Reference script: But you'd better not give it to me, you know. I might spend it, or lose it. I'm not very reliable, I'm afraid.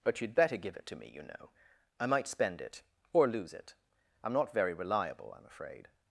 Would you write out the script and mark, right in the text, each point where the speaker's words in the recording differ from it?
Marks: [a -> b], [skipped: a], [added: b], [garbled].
But you'd better [skipped: not] give it to me, you know. I might spend it, or lose it. I'm not very reliable, I'm afraid.